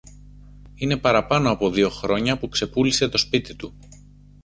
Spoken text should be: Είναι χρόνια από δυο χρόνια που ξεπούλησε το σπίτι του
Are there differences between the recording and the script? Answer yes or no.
yes